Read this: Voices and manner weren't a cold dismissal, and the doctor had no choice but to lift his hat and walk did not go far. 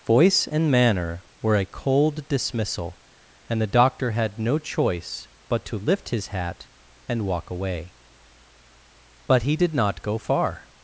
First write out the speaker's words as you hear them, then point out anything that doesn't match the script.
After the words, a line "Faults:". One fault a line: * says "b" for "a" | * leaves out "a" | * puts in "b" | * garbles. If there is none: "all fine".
Voice and manner were a cold dismissal, and the doctor had no choice but to lift his hat and walk away; but he did not go far.
Faults:
* says "Voice" for "Voices"
* says "were" for "weren't"
* puts in "away but he"